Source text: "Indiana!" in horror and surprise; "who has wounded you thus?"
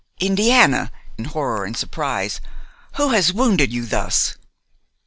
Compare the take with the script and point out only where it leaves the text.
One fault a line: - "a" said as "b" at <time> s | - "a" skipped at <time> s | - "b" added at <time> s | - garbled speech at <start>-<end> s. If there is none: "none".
none